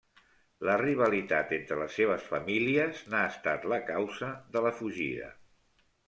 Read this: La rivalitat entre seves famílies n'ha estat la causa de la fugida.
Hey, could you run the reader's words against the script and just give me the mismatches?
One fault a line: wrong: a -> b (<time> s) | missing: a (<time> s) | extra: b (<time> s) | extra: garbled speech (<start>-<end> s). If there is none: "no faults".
extra: les (1.8 s)